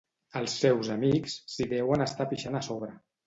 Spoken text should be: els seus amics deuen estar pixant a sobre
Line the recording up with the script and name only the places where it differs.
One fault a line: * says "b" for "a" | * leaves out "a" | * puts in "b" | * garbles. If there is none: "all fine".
* puts in "s'hi"